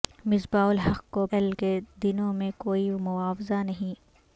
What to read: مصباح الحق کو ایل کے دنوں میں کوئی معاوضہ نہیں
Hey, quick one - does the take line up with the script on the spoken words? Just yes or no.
yes